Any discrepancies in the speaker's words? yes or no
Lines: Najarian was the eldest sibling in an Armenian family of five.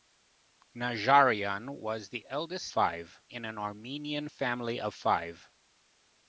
yes